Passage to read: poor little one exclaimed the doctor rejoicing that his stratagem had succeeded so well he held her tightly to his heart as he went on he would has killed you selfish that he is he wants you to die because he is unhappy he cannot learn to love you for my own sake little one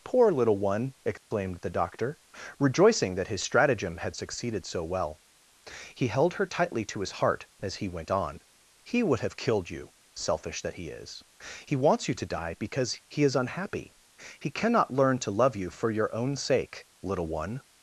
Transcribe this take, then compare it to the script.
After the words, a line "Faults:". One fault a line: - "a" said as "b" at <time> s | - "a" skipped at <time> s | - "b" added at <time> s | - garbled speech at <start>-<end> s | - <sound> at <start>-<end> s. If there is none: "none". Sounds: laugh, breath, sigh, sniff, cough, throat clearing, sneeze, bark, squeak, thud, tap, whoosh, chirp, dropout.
poor little one exclaimed the doctor rejoicing that his stratagem had succeeded so well he held her tightly to his heart as he went on he would have killed you selfish that he is he wants you to die because he is unhappy he cannot learn to love you for your own sake little one
Faults:
- dropout at 1.2-1.3 s
- "has" said as "have" at 9.2 s
- "my" said as "your" at 15.9 s